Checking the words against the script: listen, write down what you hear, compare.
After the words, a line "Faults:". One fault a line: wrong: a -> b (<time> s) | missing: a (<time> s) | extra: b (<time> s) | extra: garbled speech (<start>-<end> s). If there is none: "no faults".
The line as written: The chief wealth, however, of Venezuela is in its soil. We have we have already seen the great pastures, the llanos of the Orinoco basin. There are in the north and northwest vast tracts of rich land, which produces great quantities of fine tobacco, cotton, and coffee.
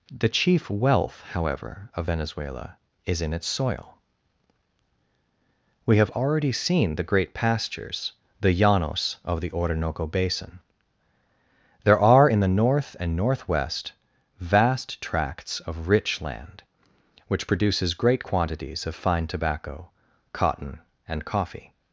The chief wealth, however, of Venezuela is in its soil. We have already seen the great pastures, the llanos of the Orinoco basin. There are in the north and northwest vast tracts of rich land, which produces great quantities of fine tobacco, cotton, and coffee.
Faults:
missing: we have (6.1 s)